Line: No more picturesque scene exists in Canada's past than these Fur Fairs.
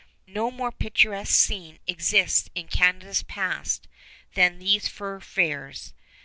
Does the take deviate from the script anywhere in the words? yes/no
no